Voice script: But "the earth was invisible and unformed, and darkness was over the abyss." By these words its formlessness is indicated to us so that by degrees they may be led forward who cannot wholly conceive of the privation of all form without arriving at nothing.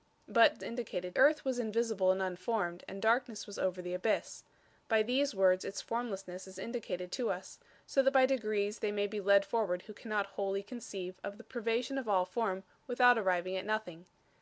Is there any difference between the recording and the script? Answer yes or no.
yes